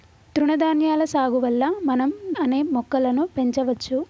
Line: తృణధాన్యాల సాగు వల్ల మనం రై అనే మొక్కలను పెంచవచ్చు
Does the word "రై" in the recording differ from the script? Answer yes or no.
yes